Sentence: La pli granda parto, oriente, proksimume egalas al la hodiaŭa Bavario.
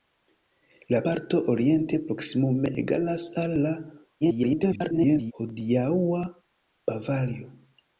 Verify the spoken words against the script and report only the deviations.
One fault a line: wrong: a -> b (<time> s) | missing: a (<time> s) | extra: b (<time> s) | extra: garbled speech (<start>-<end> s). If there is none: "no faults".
missing: pli granda (1.0 s)
extra: garbled speech (4.2-5.3 s)